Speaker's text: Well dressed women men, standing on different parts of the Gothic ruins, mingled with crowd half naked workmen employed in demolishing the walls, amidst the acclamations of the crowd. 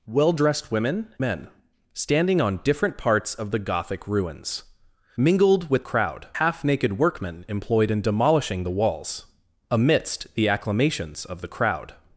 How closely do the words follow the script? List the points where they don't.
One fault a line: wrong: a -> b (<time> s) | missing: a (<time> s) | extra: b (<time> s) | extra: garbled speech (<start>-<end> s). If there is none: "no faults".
no faults